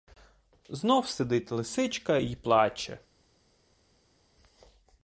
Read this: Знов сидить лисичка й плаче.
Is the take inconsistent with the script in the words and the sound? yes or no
no